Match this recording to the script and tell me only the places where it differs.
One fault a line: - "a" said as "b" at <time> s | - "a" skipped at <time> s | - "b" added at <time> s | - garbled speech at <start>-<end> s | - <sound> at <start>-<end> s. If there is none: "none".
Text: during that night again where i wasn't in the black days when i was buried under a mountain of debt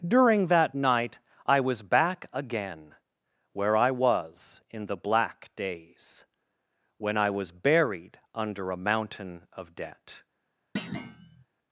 - "i was back" added at 1.5 s
- "wasn't" said as "was" at 3.9 s
- thud at 10.8-11.5 s